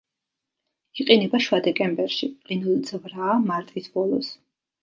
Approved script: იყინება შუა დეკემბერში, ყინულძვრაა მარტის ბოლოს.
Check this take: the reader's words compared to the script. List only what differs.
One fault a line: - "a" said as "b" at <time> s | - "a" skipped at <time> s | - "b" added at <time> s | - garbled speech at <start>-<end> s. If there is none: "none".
none